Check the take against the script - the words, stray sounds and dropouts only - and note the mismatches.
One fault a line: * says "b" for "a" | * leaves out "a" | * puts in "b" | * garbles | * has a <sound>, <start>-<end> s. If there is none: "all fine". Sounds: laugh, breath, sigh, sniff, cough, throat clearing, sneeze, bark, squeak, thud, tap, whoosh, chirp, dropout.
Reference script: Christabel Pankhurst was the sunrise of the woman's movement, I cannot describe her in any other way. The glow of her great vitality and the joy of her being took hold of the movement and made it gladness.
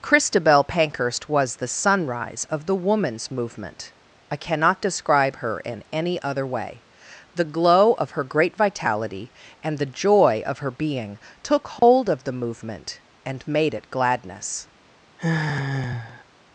* has a dropout, 11.8-11.8 s
* has a sigh, 15.2-16.2 s